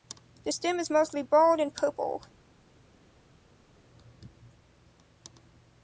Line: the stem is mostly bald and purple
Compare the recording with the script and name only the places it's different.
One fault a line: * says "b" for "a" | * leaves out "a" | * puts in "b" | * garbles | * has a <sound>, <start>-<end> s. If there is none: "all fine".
all fine